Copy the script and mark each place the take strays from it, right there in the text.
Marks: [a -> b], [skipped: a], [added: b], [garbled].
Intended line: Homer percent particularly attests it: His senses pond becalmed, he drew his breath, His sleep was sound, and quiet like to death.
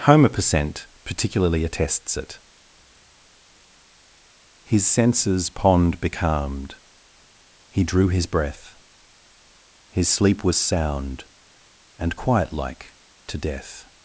Homer percent particularly attests it: His senses pond becalmed, he drew his breath, His sleep was sound, and quiet like to death.